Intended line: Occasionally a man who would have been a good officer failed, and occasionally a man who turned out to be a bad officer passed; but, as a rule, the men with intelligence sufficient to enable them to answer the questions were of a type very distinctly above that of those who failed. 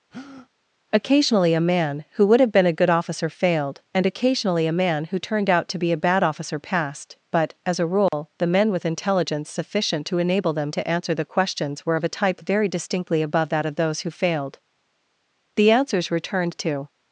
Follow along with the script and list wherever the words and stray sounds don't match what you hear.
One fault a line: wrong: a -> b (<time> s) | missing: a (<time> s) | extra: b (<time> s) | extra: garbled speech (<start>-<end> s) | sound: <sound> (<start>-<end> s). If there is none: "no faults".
sound: breath (0.1-0.5 s)
sound: dropout (8.1-8.1 s)
extra: The answers returned to (15.6 s)